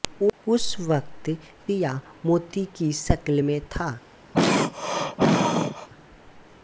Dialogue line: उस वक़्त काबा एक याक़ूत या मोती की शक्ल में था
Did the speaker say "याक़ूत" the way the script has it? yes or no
no